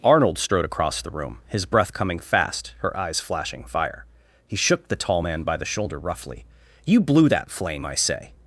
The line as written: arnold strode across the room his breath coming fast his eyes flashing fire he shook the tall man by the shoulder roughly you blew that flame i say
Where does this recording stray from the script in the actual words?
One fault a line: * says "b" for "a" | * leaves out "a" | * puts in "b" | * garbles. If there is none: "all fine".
* says "her" for "his"